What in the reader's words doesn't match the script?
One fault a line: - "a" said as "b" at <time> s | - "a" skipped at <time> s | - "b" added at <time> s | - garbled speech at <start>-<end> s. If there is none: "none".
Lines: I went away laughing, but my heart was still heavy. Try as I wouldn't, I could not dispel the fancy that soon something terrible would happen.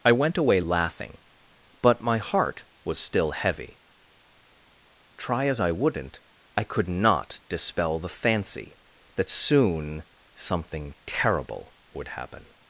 none